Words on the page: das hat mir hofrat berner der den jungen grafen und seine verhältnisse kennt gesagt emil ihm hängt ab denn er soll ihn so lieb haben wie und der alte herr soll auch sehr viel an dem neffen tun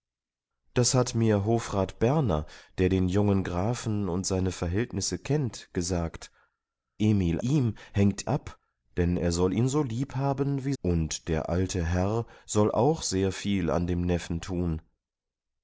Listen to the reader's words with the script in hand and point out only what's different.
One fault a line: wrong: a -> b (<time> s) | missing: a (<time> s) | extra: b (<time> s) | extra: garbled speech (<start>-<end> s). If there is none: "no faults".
no faults